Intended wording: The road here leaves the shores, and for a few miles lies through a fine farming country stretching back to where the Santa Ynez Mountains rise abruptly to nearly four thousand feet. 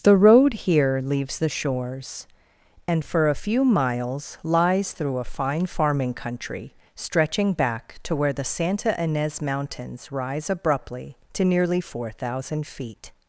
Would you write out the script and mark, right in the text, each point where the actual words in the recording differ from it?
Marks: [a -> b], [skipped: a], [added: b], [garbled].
The road here leaves the shores, and for a few miles lies through a fine farming country stretching back to where the Santa Ynez Mountains rise abruptly to nearly four thousand feet.